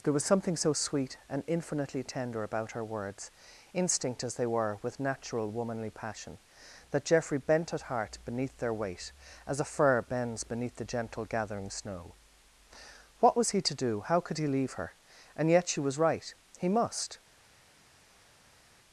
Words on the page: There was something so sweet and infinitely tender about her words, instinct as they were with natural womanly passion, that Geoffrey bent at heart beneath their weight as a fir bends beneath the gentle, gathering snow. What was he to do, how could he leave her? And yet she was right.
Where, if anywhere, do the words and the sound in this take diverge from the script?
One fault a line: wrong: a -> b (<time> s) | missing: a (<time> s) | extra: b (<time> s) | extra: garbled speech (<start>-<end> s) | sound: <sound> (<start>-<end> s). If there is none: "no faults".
extra: He must (16.6 s)